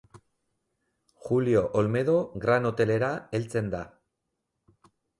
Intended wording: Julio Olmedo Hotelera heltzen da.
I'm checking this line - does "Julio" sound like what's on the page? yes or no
yes